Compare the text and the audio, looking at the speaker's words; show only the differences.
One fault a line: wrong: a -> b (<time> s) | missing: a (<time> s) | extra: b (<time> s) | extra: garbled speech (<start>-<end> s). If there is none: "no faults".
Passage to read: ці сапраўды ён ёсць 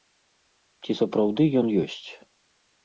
no faults